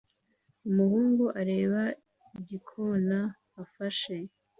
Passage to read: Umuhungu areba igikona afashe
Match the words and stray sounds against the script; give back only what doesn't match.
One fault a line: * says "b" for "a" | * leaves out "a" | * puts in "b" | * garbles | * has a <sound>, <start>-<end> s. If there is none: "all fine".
all fine